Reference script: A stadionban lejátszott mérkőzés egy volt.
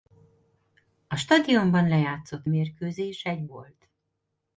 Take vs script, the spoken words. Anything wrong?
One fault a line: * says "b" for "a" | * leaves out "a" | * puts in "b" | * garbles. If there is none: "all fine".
all fine